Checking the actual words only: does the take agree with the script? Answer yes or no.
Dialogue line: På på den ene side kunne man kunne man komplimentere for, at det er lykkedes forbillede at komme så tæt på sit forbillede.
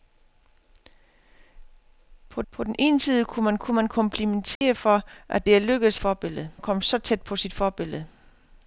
yes